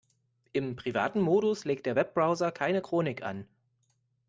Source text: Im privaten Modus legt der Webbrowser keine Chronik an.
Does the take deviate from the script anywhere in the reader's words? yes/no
no